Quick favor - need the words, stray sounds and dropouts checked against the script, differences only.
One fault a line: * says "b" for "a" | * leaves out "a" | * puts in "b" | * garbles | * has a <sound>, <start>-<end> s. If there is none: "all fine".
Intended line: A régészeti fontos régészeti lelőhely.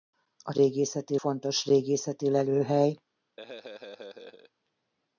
* has a laugh, 3.4-4.5 s